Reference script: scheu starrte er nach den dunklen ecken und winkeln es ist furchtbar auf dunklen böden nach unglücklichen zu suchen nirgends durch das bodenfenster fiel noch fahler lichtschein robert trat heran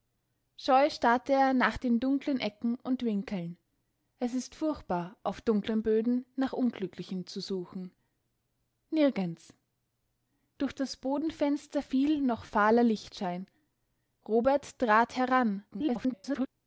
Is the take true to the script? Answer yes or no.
no